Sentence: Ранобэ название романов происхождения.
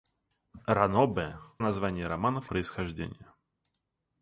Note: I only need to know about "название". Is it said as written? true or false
true